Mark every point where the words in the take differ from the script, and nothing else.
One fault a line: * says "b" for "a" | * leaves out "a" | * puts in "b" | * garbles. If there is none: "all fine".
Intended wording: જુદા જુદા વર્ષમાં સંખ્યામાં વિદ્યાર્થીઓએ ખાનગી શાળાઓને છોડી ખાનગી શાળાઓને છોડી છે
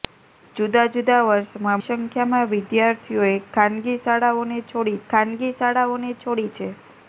all fine